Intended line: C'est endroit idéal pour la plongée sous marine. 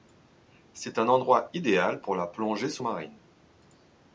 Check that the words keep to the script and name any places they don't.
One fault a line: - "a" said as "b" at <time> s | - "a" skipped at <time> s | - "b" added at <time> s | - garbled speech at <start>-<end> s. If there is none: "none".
- "un" added at 1.0 s